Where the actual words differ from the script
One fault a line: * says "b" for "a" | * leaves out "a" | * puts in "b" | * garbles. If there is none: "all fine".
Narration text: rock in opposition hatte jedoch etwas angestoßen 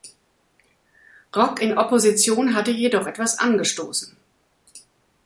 all fine